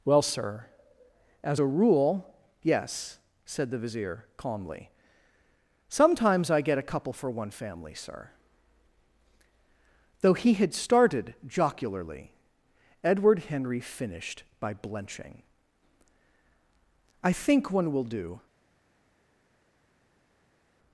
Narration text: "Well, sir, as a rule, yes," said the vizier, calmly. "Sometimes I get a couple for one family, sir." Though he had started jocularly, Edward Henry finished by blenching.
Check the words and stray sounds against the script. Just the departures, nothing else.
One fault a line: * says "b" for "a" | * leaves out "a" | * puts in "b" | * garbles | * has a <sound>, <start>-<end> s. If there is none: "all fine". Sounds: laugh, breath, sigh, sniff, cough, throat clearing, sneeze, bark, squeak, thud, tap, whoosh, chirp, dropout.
* puts in "I think one will do"